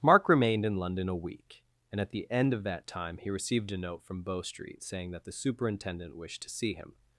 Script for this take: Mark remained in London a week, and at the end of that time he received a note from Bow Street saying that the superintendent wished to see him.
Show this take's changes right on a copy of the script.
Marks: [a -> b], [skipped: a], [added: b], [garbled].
Mark remained in London a week, and at the end of that time he received a note from Bow Street saying that the superintendent wished to see him.